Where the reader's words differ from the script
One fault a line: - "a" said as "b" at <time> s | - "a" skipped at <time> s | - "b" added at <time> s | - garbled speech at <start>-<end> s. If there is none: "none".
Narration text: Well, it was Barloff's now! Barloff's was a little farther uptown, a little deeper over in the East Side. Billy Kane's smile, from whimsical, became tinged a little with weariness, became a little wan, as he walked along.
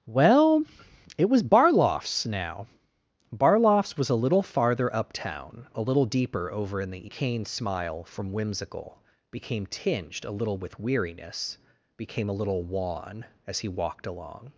- "East Side Billy" skipped at 7.1 s